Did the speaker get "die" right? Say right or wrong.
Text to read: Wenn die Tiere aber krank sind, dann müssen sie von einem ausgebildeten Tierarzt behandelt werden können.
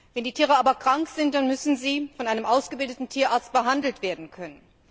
right